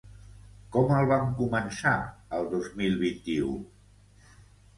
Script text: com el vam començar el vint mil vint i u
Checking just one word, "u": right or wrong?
right